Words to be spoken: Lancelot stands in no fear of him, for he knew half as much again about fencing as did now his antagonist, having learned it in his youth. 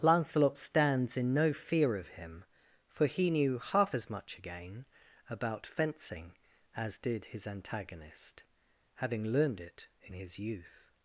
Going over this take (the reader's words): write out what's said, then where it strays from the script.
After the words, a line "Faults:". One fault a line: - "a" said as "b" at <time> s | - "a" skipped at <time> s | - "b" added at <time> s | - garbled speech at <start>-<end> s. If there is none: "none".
Lancelot stands in no fear of him, for he knew half as much again about fencing as did his antagonist, having learned it in his youth.
Faults:
- "now" skipped at 7.3 s